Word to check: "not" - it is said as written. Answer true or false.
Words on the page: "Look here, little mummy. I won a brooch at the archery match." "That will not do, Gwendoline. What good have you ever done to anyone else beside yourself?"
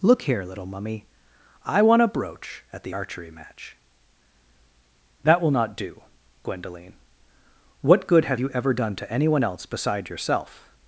true